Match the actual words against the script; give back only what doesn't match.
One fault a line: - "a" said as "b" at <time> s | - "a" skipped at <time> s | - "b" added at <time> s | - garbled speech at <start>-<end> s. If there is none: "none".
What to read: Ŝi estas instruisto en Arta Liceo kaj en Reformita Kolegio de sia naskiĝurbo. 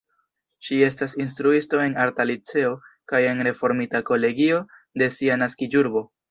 none